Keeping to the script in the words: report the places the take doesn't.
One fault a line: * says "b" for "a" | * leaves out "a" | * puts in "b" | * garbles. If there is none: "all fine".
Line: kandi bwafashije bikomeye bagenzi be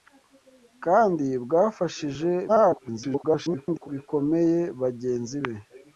* garbles